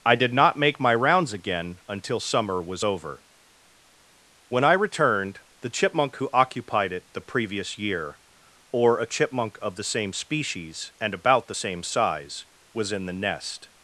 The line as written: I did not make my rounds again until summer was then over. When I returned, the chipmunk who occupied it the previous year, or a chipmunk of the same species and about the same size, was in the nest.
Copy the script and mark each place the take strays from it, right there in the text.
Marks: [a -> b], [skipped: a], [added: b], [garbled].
I did not make my rounds again until summer was [skipped: then] over. When I returned, the chipmunk who occupied it the previous year, or a chipmunk of the same species and about the same size, was in the nest.